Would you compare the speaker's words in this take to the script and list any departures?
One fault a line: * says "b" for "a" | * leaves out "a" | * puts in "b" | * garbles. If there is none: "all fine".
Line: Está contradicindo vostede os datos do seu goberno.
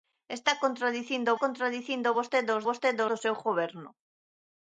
* puts in "contradicindo"
* says "vostede" for "datos"